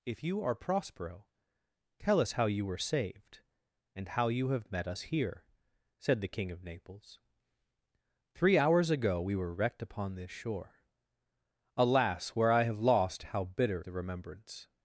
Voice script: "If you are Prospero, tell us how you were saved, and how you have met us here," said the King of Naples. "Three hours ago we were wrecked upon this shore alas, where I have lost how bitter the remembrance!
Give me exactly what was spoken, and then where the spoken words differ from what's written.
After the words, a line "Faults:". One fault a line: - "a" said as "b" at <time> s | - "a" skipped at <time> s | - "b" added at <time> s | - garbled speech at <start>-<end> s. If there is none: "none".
"If you are Prospero, tell us how you were saved, and how you have met us here," said the King of Naples. "Three hours ago we were wrecked upon this shore alas, where I have lost how bitter the remembrance!
Faults:
none